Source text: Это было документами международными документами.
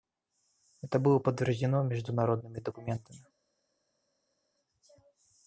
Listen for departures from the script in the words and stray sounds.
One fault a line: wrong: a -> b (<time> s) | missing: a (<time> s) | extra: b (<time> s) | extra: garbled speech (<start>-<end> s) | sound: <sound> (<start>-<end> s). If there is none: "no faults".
wrong: документами -> подтверждено (1.2 s)